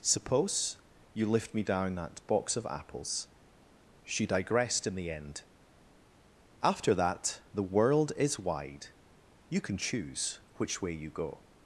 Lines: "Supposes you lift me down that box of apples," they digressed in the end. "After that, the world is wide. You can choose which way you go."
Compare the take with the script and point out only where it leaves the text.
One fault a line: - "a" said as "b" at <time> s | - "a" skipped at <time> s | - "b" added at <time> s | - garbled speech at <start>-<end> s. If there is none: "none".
- "Supposes" said as "Suppose" at 0.0 s
- "they" said as "she" at 4.0 s